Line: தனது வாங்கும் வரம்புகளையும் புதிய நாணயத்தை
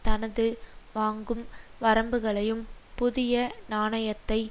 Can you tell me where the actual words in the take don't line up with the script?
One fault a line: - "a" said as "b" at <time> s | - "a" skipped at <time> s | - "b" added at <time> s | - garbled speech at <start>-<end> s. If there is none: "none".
none